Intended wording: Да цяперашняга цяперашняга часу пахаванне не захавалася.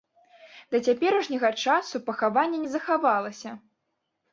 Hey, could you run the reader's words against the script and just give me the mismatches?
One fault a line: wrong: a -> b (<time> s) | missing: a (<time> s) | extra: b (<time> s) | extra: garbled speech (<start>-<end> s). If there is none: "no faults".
missing: цяперашняга (1.5 s)